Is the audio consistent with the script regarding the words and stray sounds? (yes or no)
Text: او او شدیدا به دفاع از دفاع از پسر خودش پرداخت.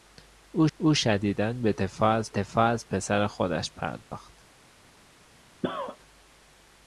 no